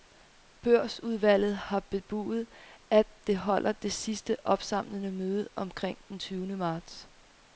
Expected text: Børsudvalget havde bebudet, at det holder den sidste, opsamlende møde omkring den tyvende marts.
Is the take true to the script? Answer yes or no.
no